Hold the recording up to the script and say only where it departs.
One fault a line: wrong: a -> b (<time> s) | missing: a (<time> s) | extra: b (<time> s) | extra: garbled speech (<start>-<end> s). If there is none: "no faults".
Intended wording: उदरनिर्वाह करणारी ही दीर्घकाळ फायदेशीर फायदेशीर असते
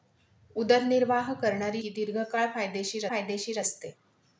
no faults